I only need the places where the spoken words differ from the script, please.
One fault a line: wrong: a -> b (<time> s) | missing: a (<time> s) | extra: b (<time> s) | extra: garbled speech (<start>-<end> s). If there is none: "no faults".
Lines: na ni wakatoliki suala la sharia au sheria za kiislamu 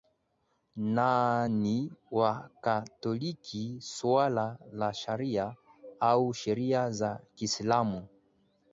no faults